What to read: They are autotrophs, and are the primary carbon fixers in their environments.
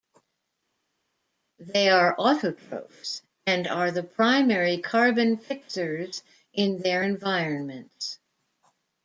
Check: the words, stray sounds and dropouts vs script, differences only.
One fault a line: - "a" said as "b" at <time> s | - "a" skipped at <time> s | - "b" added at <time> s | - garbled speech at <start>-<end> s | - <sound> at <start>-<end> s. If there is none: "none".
none